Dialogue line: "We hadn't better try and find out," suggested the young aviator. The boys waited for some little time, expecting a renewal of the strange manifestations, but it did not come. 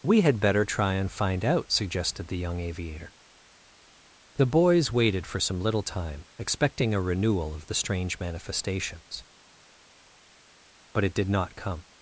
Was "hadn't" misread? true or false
true